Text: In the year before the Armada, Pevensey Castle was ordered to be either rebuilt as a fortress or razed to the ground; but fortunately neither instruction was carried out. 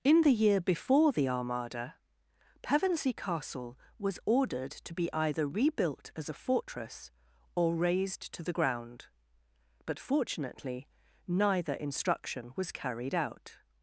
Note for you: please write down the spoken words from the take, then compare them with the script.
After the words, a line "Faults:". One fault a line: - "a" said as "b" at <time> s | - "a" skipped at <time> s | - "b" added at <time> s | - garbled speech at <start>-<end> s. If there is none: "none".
In the year before the Armada, Pevensey Castle was ordered to be either rebuilt as a fortress or razed to the ground; but fortunately neither instruction was carried out.
Faults:
none